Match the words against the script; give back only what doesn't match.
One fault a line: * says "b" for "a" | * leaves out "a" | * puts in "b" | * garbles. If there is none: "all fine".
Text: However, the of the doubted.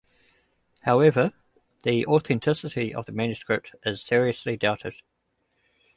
* puts in "authenticity"
* puts in "manuscript is seriously"